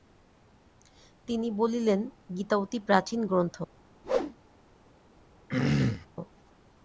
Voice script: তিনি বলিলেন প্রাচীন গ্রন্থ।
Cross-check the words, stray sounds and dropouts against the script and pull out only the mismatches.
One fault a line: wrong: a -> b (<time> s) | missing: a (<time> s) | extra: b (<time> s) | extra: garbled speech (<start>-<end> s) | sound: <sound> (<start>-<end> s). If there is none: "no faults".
extra: গীতা অতি (2.4 s)
sound: whoosh (4.0-4.4 s)
sound: throat clearing (5.5-6.1 s)